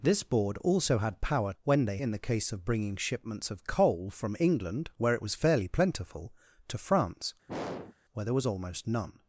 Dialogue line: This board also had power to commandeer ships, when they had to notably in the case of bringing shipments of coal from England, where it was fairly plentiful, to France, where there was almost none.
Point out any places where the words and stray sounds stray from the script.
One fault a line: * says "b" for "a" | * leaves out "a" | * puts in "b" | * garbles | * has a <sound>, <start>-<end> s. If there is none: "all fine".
* leaves out "to commandeer ships"
* leaves out "had to notably"
* has a throat clearing, 7.5-7.9 s